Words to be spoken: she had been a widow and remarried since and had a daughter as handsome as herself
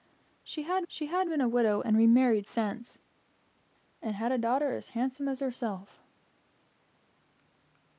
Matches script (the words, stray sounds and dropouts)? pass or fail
fail